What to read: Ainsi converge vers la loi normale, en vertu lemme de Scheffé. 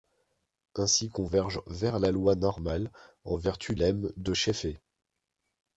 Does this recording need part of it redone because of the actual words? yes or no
no